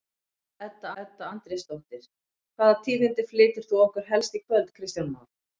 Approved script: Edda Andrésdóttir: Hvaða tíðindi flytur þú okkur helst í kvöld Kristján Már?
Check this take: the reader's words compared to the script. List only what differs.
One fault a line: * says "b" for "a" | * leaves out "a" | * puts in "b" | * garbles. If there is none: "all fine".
* puts in "edda"